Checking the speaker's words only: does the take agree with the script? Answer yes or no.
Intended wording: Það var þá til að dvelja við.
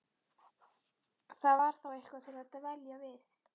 no